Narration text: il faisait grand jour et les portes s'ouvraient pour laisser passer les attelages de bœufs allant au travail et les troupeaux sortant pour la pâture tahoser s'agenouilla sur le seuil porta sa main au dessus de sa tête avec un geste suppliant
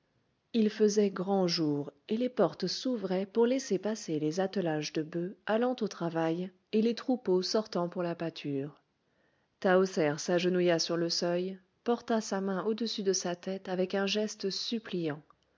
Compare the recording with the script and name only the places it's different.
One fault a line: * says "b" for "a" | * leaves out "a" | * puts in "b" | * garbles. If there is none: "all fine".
all fine